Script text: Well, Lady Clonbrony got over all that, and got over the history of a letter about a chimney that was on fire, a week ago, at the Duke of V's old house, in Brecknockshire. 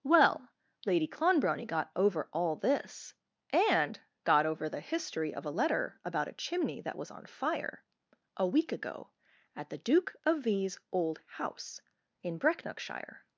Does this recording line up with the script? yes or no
no